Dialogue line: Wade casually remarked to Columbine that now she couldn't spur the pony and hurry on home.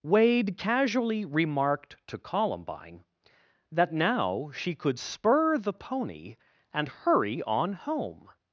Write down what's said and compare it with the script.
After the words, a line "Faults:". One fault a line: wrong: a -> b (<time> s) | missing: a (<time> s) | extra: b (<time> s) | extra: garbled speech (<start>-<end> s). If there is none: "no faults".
Wade casually remarked to Columbine that now she could spur the pony and hurry on home.
Faults:
wrong: couldn't -> could (4.7 s)